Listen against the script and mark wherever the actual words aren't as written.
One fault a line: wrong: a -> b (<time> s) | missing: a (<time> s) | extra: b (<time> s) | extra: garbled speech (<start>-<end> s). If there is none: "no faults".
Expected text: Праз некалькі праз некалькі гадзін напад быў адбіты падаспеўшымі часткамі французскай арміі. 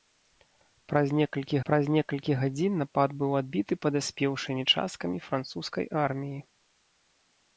no faults